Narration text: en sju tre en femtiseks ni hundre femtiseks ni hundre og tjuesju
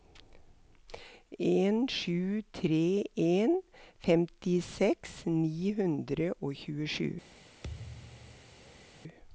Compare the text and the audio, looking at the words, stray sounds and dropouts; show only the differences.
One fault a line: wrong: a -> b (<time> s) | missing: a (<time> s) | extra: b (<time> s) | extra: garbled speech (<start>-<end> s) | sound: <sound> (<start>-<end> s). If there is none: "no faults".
missing: femtiseks ni hundre (6.3 s)
sound: thud (7.6-8.9 s)